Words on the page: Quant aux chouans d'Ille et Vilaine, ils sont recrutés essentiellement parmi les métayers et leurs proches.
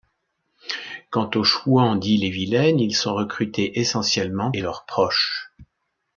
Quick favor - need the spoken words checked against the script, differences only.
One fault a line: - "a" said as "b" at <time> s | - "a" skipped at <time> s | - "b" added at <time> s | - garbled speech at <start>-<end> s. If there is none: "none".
- "parmi les métayers" skipped at 4.5 s